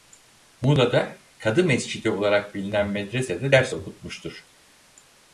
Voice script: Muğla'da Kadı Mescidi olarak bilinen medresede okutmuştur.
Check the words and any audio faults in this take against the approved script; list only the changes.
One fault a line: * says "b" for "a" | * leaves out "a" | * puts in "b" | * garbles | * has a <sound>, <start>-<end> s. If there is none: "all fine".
* puts in "ders"